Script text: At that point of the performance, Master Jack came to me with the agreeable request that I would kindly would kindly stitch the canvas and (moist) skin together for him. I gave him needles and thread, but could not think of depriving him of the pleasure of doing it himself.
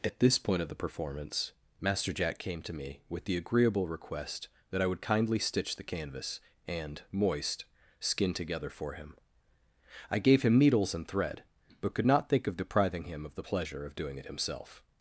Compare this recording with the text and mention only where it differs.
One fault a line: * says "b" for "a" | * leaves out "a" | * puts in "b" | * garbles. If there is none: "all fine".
* says "this" for "that"
* leaves out "would kindly"